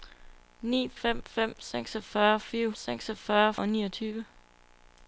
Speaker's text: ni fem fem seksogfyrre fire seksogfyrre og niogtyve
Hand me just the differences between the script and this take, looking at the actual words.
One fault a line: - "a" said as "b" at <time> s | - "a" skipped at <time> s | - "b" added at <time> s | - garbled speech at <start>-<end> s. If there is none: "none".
none